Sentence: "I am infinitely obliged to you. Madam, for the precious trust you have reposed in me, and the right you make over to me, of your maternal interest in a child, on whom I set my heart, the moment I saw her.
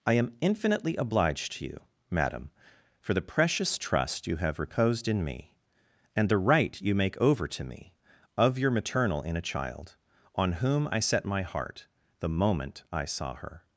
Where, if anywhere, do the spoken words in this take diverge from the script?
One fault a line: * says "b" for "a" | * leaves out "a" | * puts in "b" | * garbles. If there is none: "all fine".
* leaves out "interest"